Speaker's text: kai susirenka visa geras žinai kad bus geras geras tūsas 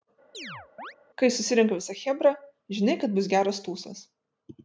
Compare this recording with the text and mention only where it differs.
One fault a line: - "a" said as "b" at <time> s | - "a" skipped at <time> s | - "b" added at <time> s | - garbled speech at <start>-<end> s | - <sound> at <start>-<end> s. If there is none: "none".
- chirp at 0.3-0.9 s
- "geras" said as "chebra" at 2.0 s
- "geras" skipped at 3.6 s